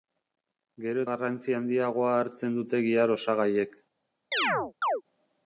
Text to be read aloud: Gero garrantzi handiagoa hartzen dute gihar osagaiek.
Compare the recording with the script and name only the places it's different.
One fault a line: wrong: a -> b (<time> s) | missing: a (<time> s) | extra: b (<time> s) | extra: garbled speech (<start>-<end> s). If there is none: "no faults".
no faults